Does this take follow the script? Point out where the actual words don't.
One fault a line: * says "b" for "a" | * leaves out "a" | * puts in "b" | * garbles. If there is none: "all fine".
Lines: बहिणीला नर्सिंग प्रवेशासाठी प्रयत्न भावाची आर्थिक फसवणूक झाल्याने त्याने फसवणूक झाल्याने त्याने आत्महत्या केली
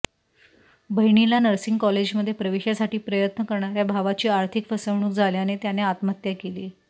* puts in "कॉलेजमध्ये"
* puts in "करणाऱ्या"
* leaves out "फसवणूक झाल्याने त्याने"